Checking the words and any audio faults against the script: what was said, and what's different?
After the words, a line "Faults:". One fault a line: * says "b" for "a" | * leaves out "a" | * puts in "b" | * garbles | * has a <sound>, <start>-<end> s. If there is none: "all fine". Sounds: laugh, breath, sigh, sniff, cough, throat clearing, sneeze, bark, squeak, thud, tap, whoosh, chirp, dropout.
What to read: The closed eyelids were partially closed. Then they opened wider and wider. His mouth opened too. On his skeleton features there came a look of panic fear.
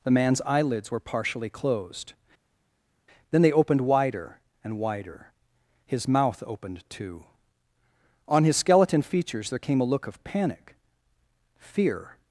The man's eyelids were partially closed. Then they opened wider and wider. His mouth opened too. On his skeleton features there came a look of panic fear.
Faults:
* says "man's" for "closed"